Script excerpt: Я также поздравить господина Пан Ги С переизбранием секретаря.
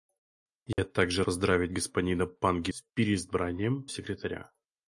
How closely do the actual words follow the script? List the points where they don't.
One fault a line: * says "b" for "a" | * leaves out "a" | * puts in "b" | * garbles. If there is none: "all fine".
all fine